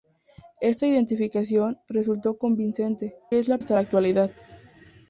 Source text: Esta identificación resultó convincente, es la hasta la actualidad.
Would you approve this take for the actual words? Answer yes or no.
yes